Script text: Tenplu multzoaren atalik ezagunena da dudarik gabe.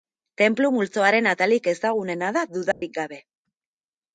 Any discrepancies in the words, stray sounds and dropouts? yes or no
yes